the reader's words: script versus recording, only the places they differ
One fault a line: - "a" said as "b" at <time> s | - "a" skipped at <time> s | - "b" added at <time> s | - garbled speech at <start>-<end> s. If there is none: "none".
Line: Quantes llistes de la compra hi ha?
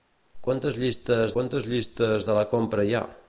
- "quantes llistes" added at 1.4 s